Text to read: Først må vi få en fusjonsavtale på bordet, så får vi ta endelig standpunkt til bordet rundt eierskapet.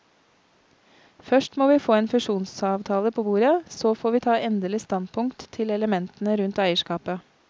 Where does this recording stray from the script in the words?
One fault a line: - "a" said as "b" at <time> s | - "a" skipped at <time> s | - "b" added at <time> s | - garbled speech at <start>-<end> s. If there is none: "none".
- "bordet" said as "elementene" at 5.7 s